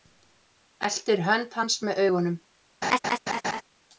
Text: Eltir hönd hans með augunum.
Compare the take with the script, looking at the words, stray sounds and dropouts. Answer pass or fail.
fail